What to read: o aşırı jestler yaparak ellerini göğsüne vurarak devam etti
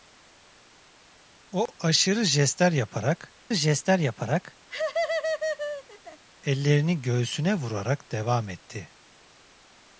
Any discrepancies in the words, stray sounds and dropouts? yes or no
yes